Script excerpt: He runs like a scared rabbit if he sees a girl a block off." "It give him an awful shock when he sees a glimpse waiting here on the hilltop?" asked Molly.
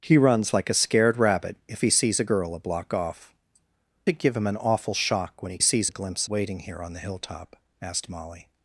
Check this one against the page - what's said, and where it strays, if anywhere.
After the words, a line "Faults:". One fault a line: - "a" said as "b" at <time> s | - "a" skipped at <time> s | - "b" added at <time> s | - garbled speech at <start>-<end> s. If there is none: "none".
He runs like a scared rabbit if he sees a girl a block off." "It give him an awful shock when he sees a glimpse waiting here on the hilltop?" asked Molly.
Faults:
none